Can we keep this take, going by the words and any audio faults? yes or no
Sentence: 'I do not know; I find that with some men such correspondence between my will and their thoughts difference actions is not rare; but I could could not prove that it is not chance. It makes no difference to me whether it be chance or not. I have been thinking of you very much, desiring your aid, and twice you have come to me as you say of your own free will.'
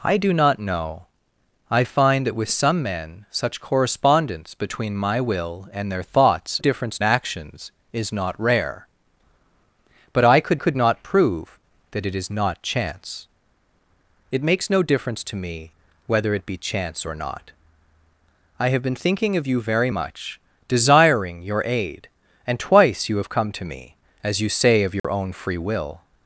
no